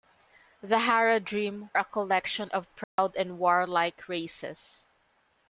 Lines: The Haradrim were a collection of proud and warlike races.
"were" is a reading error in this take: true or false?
true